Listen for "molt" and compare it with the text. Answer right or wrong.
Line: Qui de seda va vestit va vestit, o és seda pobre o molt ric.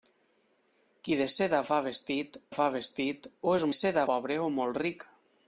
right